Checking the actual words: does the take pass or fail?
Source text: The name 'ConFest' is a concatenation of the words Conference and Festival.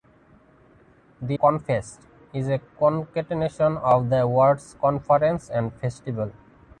fail